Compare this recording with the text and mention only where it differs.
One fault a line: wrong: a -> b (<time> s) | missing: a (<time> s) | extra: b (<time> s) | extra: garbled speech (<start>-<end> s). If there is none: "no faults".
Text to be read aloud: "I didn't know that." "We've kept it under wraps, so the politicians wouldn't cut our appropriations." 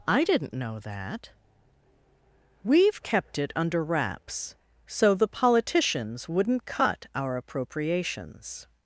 no faults